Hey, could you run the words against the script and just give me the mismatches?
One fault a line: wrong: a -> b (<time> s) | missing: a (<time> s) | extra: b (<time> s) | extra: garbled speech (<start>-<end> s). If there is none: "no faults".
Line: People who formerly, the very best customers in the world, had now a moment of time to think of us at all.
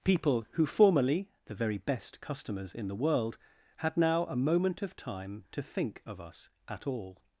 no faults